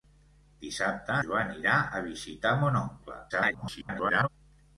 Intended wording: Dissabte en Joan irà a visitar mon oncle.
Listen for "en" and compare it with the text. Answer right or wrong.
wrong